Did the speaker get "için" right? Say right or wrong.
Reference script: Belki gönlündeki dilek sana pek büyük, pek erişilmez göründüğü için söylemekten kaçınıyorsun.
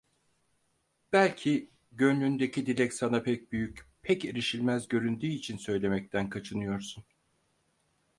right